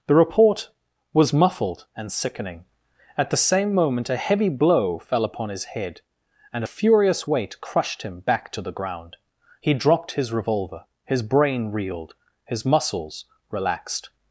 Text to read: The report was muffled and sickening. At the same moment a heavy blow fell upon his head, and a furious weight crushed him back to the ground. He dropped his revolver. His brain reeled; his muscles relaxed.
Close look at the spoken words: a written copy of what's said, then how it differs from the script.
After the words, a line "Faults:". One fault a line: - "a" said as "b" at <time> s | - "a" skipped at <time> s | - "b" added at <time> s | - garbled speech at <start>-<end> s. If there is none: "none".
The report was muffled and sickening. At the same moment a heavy blow fell upon his head, and a furious weight crushed him back to the ground. He dropped his revolver. His brain reeled; his muscles relaxed.
Faults:
none